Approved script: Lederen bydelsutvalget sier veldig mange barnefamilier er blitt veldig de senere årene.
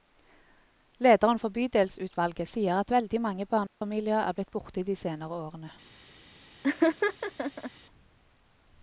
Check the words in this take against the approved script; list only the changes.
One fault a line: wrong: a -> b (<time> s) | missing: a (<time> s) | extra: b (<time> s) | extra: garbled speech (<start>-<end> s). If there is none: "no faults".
extra: for (1.4 s)
extra: at (2.8 s)
wrong: veldig -> borte (4.6 s)